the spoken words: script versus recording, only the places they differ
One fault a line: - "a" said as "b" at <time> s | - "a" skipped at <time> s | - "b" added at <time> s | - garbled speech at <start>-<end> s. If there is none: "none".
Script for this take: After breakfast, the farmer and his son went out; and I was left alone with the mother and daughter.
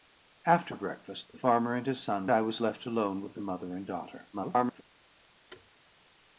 - "went out and" skipped at 2.3 s
- garbled speech at 4.3-4.8 s